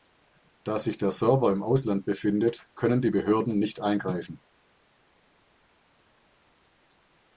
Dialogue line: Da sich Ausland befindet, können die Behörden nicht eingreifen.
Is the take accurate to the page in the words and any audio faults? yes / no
no